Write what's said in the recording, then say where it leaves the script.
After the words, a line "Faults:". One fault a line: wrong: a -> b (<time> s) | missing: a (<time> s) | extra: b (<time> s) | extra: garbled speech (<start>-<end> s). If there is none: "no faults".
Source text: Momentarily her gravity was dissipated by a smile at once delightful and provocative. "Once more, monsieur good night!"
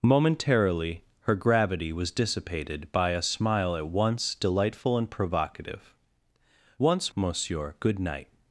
Momentarily her gravity was dissipated by a smile at once delightful and provocative. "Once monsieur good night!"
Faults:
missing: more (7.1 s)